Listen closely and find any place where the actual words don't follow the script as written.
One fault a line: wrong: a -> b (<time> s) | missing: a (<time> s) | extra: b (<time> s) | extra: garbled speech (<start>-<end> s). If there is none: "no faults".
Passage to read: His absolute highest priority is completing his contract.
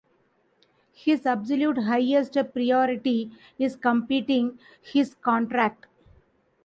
no faults